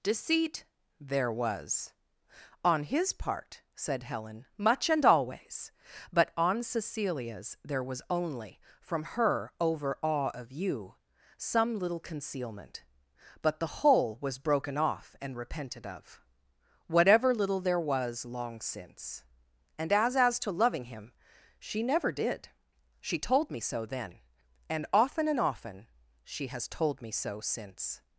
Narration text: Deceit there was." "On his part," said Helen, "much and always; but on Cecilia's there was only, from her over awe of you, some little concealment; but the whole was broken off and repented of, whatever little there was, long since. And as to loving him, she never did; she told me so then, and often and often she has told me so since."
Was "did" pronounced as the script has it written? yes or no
yes